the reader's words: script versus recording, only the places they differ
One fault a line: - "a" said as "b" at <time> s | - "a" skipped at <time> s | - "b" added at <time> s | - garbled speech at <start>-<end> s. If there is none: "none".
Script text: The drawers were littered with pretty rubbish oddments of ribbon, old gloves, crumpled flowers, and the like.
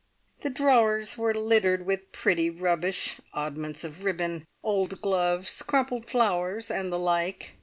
none